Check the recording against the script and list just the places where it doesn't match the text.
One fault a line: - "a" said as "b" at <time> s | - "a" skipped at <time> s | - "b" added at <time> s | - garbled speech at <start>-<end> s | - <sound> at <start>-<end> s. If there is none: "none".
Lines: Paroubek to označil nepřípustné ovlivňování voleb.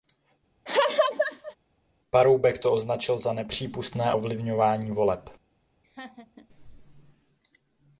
- laugh at 0.7-1.6 s
- "za" added at 3.2 s
- laugh at 5.8-6.5 s